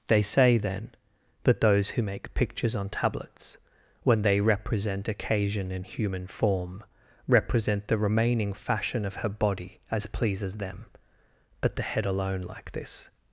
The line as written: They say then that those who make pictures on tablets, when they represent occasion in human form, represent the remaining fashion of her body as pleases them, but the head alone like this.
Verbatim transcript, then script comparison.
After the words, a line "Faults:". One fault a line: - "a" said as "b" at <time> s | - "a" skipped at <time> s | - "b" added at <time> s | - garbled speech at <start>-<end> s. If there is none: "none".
They say then that those who make pictures on tablets, when they represent occasion in human form, represent the remaining fashion of her body as pleases them, but the head alone like this.
Faults:
none